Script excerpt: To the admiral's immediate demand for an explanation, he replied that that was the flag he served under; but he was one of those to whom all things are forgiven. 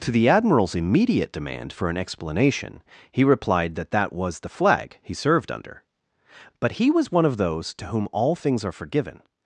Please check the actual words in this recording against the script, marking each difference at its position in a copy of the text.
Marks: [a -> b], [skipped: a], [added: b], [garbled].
To the admiral's immediate demand for an explanation, he replied that that was the flag he served under; but he was one of those to whom all things are forgiven.